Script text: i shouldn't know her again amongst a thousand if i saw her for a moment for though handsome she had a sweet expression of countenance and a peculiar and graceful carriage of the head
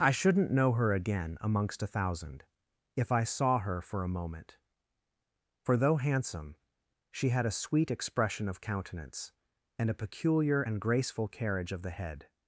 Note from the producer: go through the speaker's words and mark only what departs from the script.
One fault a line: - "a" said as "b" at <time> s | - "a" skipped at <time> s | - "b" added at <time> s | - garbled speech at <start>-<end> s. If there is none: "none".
none